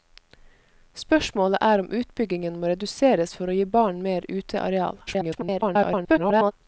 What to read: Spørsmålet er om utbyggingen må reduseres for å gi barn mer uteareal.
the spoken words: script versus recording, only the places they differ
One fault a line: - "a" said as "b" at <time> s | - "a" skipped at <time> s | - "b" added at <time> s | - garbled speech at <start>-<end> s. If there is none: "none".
- garbled speech at 5.1-6.5 s